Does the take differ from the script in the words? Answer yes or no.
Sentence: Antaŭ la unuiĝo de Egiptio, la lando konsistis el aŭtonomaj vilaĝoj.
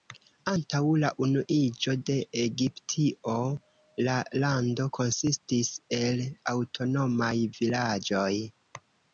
no